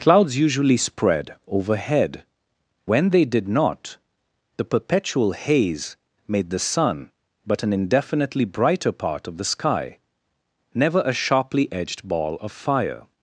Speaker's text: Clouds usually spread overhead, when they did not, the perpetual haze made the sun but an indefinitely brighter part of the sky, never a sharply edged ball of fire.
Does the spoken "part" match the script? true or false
true